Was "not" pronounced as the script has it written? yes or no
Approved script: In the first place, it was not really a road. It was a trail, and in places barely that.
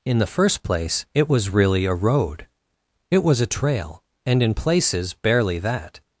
no